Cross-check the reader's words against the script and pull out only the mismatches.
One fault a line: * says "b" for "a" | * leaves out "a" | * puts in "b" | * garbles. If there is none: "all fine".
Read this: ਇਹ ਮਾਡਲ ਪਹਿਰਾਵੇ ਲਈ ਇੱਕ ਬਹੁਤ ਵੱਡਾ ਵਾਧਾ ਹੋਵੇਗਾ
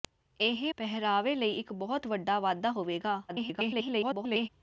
* leaves out "ਮਾਡਲ"
* garbles